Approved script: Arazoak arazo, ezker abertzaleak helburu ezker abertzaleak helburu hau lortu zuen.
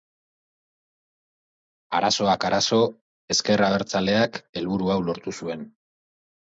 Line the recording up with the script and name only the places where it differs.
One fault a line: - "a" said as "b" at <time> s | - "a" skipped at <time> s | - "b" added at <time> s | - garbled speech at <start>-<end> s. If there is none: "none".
- "ezker abertzaleak helburu" skipped at 4.9 s